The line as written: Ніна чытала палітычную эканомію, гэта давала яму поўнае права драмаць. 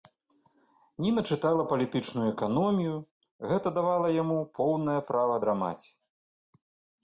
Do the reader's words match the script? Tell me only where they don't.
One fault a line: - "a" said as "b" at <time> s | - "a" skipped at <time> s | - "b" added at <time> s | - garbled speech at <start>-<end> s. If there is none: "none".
none